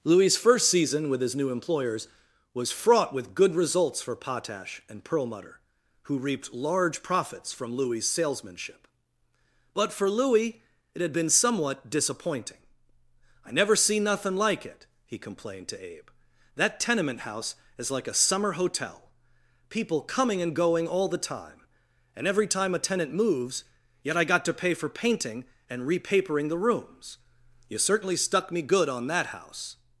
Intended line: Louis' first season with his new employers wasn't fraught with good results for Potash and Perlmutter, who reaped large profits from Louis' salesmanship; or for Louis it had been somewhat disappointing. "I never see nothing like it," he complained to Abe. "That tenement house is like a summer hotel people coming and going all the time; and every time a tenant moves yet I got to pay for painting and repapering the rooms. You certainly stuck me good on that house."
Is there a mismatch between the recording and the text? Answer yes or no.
yes